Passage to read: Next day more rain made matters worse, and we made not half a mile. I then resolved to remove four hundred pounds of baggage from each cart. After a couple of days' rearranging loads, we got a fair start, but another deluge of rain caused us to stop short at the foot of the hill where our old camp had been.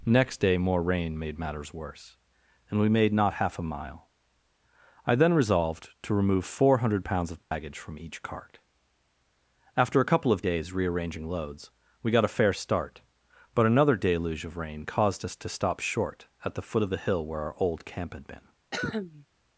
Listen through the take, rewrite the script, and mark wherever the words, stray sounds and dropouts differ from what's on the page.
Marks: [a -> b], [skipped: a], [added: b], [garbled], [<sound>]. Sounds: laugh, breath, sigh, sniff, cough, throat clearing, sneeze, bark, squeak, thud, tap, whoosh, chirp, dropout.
Next day more rain made matters worse, and we made not half a mile. I then resolved to remove four hundred pounds of baggage [dropout] from each cart. After a couple of days' rearranging loads, we got a fair start, but another deluge of rain caused us to stop short at the foot of the hill where our old camp had been. [cough]